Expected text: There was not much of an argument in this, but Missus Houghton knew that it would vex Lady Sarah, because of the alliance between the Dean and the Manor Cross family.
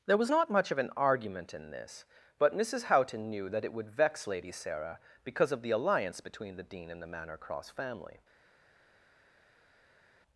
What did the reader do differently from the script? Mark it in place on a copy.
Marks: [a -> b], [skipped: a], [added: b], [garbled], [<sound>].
There was not much of an argument in this, but Missus Houghton knew that it would vex Lady Sarah, because of the alliance between the Dean and the Manor Cross family.